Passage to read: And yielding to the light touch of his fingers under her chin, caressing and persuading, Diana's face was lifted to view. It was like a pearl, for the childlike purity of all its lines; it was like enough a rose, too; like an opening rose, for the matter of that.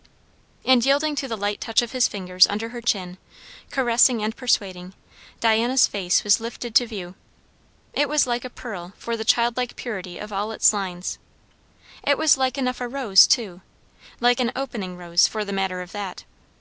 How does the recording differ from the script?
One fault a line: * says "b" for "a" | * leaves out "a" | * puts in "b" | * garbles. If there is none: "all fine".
all fine